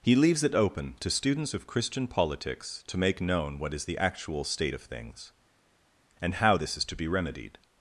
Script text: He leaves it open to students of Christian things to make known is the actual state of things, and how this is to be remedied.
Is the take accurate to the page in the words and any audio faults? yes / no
no